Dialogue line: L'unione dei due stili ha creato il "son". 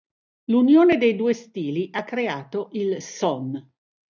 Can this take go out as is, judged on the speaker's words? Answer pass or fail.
pass